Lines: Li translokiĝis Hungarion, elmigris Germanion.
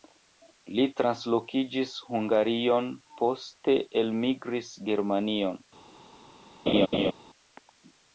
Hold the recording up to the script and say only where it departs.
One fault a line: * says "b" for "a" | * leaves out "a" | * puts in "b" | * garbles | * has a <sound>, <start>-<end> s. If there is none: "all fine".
* puts in "poste"
* has a laugh, 6.7-7.1 s